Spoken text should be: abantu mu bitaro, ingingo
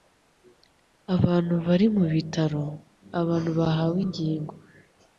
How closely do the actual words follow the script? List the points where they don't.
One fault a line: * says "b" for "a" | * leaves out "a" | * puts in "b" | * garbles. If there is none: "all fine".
* puts in "bari"
* puts in "abantu bahawe"